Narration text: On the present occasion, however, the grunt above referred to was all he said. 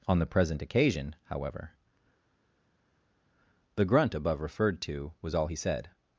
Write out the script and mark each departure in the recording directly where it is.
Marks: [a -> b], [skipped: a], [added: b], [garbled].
On the present occasion, however, the grunt above referred to was all he said.